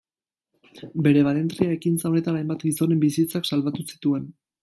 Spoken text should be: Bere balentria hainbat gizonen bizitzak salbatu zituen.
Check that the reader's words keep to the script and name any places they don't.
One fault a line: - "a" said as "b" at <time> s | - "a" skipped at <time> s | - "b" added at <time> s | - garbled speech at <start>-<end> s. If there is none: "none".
- "ekintza honetan" added at 1.8 s